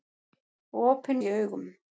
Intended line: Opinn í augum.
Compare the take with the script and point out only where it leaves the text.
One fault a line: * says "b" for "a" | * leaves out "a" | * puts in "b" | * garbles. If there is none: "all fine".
all fine